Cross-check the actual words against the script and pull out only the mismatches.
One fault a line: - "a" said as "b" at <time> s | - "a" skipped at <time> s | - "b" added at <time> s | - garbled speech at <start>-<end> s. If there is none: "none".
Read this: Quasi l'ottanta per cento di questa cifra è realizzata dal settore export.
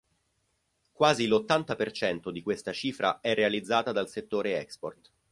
none